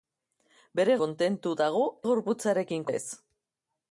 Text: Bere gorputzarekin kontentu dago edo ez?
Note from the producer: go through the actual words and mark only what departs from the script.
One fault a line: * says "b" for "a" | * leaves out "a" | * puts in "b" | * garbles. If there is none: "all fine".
* leaves out "gorputzarekin"
* says "gorputzarekin" for "edo"